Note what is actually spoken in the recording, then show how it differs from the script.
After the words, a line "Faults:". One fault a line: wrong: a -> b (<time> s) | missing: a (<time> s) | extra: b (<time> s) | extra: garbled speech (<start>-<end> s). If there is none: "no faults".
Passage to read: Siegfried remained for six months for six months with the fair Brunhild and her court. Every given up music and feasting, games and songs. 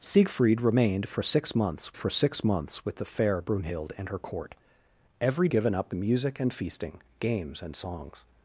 Siegfried remained for six months for six months with the fair Brunhild and her court. Every given up music and feasting, games and songs.
Faults:
no faults